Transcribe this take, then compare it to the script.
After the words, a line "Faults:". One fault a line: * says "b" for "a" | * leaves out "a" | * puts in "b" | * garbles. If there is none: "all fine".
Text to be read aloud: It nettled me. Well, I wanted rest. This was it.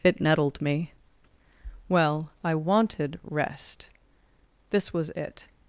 It nettled me. Well, I wanted rest. This was it.
Faults:
all fine